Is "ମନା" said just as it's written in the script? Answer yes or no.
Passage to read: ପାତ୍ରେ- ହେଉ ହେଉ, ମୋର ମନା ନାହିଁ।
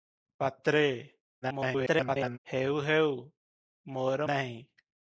no